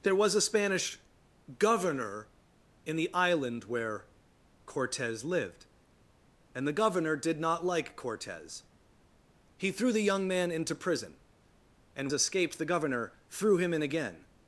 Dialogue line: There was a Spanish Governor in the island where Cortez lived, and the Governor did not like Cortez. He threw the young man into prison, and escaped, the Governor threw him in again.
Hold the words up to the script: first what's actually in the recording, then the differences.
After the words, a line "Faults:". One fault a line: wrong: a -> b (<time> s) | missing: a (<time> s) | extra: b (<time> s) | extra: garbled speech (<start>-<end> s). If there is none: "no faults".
There was a Spanish Governor in the island where Cortez lived, and the Governor did not like Cortez. He threw the young man into prison, and escaped, the Governor threw him in again.
Faults:
no faults